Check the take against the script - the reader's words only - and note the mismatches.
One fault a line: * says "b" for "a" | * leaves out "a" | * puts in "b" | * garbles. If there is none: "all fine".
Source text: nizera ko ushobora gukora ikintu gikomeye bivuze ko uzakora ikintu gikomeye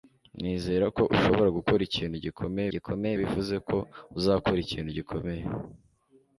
* puts in "gikomeye"